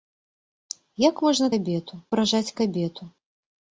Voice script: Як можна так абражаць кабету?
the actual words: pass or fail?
fail